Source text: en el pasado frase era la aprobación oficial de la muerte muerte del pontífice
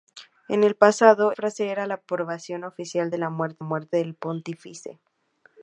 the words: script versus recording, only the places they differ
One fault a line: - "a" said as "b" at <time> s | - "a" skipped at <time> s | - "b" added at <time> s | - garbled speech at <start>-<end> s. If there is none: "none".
none